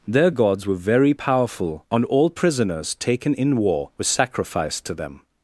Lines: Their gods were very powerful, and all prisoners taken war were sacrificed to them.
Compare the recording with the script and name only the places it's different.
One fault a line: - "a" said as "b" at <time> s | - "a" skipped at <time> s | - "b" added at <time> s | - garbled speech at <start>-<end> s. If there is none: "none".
- "in" added at 3.3 s